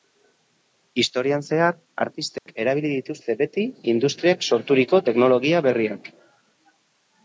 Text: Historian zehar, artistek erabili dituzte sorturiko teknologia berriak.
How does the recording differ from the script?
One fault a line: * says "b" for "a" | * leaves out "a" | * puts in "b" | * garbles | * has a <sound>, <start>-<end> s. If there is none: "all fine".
* has a dropout, 2.4-2.5 s
* puts in "beti industriak"